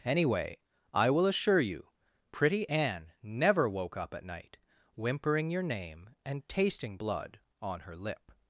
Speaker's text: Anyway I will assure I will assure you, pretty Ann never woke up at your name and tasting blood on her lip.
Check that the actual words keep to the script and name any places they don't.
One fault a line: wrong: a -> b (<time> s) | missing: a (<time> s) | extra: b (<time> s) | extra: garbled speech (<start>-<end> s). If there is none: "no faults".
missing: I will assure (1.6 s)
extra: night whimpering (4.2 s)